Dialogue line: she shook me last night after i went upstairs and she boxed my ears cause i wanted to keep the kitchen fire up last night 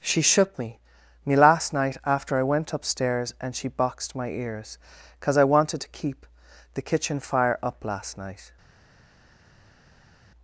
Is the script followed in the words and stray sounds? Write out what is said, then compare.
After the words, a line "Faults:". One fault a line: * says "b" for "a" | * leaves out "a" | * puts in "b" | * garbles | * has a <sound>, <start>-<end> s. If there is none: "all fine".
she shook me me last night after i went upstairs and she boxed my ears cause i wanted to keep the kitchen fire up last night
Faults:
* puts in "me"